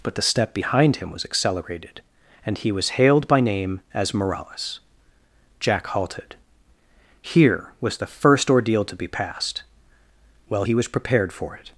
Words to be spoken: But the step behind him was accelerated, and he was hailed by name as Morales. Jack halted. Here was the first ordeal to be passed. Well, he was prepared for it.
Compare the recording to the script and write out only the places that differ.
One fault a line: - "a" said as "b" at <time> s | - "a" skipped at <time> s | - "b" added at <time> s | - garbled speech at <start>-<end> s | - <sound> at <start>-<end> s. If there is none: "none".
none